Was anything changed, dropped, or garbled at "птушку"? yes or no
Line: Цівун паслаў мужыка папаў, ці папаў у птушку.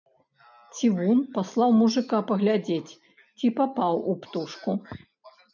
no